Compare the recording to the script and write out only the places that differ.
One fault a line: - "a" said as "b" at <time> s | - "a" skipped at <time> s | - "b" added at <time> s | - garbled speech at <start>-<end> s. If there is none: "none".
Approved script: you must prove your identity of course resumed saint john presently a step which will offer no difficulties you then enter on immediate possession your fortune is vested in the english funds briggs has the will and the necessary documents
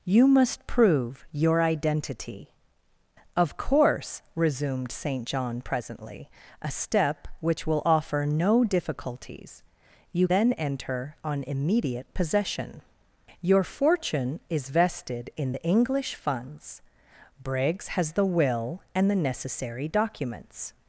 none